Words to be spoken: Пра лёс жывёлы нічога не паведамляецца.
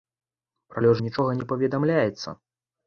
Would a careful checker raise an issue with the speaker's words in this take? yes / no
yes